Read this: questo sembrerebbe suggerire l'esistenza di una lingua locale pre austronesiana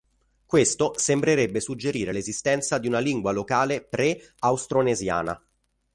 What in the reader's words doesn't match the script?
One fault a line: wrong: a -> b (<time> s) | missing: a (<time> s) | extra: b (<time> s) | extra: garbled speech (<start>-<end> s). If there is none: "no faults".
no faults